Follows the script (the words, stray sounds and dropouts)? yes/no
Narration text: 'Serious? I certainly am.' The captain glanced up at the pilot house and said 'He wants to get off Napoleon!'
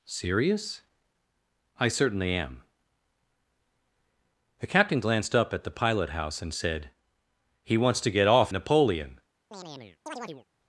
no